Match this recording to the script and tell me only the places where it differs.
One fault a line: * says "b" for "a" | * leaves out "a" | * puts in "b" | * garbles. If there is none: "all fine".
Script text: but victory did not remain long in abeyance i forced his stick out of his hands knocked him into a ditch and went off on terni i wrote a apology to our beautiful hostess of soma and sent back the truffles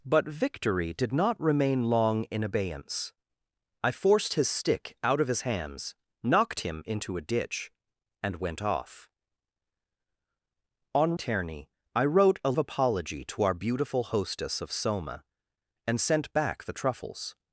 all fine